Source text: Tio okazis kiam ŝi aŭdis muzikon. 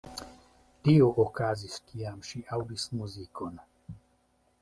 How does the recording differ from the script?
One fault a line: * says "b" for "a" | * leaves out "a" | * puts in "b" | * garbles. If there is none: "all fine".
all fine